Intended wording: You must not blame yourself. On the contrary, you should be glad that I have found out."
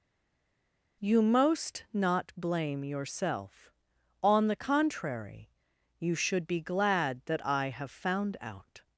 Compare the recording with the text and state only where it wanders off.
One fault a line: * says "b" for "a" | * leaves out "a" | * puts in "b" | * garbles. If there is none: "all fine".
* says "most" for "must"